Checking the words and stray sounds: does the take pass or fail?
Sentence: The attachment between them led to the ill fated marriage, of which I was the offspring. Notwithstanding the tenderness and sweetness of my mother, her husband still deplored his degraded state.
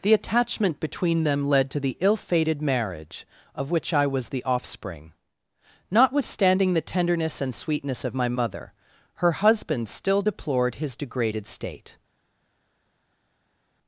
pass